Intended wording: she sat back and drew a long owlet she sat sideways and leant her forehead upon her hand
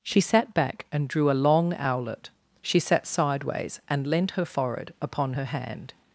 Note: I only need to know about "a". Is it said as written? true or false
true